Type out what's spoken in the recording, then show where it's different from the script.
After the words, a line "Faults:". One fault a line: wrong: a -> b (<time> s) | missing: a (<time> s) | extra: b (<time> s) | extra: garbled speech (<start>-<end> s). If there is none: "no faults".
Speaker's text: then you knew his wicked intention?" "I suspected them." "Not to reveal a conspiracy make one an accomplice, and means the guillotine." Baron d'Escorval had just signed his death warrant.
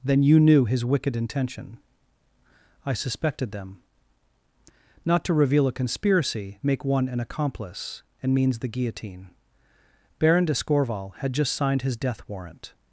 then you knew his wicked intention?" "I suspected them." "Not to reveal a conspiracy make one an accomplice, and means the guillotine." Baron d'Escorval had just signed his death warrant.
Faults:
no faults